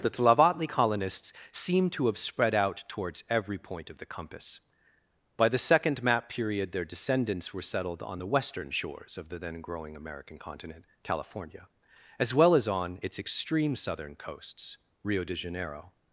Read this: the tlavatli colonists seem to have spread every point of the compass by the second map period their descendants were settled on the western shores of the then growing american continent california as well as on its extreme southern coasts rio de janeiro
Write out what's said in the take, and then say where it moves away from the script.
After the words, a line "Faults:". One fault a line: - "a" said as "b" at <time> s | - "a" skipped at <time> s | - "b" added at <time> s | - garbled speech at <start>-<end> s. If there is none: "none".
the tlavatli colonists seem to have spread out towards every point of the compass by the second map period their descendants were settled on the western shores of the then growing american continent california as well as on its extreme southern coasts rio de janeiro
Faults:
- "out towards" added at 2.5 s